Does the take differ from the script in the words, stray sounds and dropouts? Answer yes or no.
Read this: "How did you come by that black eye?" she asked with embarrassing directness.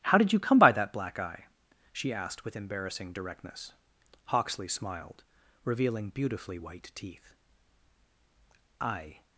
yes